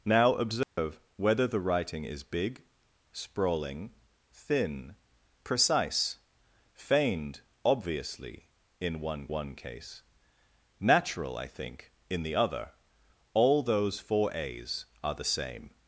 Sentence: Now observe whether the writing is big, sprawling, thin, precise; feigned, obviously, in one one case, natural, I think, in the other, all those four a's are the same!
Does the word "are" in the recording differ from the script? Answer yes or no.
no